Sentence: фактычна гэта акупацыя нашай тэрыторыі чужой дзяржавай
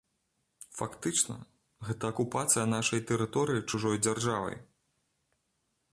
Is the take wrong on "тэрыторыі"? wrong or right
right